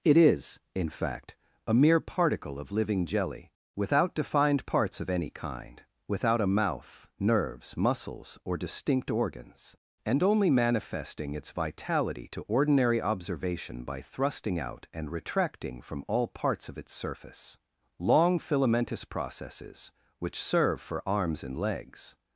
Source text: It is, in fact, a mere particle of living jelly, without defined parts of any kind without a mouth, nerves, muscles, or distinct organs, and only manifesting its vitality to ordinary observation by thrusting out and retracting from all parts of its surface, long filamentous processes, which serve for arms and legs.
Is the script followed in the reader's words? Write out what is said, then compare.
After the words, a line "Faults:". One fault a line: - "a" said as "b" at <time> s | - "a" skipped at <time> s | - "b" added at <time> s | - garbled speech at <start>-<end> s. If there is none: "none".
It is, in fact, a mere particle of living jelly, without defined parts of any kind without a mouth, nerves, muscles, or distinct organs, and only manifesting its vitality to ordinary observation by thrusting out and retracting from all parts of its surface, long filamentous processes, which serve for arms and legs.
Faults:
none